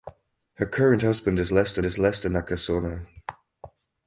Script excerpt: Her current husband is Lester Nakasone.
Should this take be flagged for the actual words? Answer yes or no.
yes